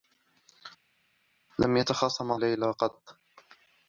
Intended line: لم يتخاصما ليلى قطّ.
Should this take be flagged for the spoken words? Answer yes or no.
no